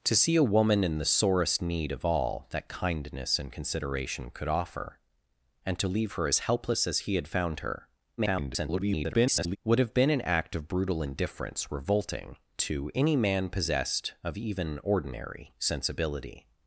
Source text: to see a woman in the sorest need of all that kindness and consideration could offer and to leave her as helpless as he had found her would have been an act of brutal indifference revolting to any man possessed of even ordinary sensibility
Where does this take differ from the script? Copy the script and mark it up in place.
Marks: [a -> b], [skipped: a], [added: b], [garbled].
to see a woman in the sorest need of all that kindness and consideration could offer and to leave her as helpless as he had found her [garbled] would have been an act of brutal indifference revolting to any man possessed of even ordinary sensibility